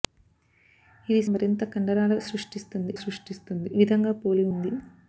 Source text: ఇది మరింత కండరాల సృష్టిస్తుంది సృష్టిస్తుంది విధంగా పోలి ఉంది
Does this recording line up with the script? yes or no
yes